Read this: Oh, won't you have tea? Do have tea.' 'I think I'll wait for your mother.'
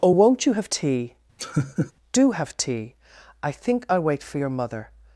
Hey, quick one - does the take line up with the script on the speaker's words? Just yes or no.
yes